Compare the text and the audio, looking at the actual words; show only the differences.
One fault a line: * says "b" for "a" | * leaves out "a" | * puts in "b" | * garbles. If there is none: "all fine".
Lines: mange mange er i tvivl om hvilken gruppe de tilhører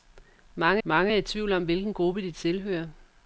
all fine